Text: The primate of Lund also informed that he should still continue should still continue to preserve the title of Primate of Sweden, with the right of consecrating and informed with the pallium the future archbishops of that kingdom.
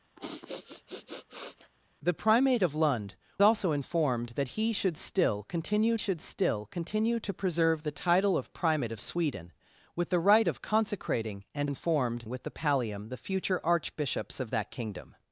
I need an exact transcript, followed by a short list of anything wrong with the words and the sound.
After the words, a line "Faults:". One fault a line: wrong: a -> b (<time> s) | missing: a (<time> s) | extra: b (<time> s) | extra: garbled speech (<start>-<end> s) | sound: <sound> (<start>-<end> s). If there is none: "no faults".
The primate of Lund also informed that he should still continue should still continue to preserve the title of Primate of Sweden, with the right of consecrating and informed with the pallium the future archbishops of that kingdom.
Faults:
sound: sniff (0.1-1.7 s)